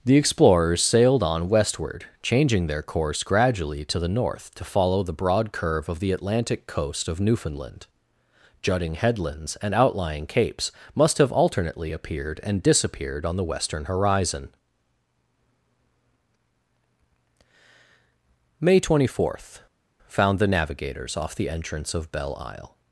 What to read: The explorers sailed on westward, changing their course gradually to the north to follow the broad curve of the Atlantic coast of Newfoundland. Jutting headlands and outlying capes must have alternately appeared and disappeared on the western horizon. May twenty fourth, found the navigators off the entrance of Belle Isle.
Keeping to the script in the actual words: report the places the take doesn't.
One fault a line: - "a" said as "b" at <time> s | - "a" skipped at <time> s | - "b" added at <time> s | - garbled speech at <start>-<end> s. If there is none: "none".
none